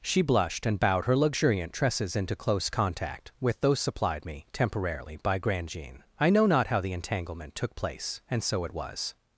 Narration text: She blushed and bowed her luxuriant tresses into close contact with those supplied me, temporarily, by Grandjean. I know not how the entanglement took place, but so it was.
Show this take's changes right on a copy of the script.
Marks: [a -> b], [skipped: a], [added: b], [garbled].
She blushed and bowed her luxuriant tresses into close contact with those supplied me, temporarily, by Grandjean. I know not how the entanglement took place, [but -> and] so it was.